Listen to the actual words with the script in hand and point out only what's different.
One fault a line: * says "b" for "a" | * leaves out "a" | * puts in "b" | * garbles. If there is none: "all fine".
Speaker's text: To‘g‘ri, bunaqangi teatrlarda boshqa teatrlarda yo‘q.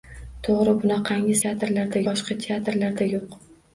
all fine